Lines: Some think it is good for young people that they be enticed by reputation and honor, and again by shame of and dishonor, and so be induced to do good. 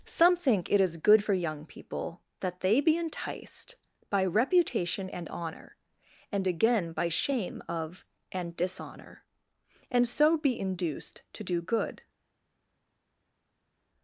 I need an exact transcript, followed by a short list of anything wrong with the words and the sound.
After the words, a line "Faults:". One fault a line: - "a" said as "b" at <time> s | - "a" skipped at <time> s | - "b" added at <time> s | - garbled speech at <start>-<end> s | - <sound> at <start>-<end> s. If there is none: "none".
Some think it is good for young people that they be enticed by reputation and honor, and again by shame of and dishonor, and so be induced to do good.
Faults:
none